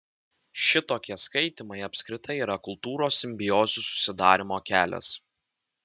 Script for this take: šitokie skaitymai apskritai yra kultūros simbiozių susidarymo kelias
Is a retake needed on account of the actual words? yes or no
no